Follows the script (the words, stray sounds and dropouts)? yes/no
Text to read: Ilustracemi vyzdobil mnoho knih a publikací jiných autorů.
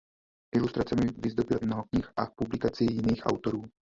yes